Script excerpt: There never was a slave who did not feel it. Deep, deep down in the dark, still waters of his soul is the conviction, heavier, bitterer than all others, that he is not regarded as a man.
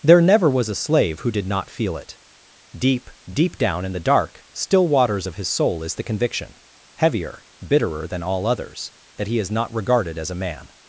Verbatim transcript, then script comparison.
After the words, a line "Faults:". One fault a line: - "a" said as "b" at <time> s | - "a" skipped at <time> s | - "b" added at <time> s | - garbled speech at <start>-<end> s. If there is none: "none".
There never was a slave who did not feel it. Deep, deep down in the dark, still waters of his soul is the conviction, heavier, bitterer than all others, that he is not regarded as a man.
Faults:
none